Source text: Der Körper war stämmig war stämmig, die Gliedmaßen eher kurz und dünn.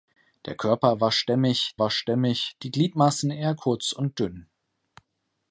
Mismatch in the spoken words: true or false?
false